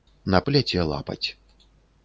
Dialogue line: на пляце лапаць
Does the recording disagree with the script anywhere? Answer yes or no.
no